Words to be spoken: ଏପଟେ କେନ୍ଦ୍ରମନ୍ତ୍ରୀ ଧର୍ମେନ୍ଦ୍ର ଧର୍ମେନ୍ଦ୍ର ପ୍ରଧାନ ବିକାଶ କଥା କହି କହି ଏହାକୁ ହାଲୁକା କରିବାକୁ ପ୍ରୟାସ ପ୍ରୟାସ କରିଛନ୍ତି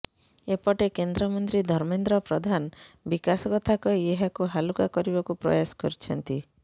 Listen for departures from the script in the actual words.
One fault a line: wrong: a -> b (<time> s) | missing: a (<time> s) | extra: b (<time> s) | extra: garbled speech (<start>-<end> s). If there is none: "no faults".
missing: ଧର୍ମେନ୍ଦ୍ର (2.2 s)
missing: କହି (4.1 s)
missing: ପ୍ରୟାସ (5.8 s)